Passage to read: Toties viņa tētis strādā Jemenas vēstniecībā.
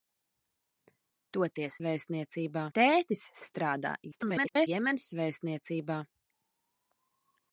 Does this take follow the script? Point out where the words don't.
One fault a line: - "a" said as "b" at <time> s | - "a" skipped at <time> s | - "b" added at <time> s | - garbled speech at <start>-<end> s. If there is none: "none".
- "viņa" said as "vēstniecībā" at 1.9 s
- garbled speech at 4.1-4.7 s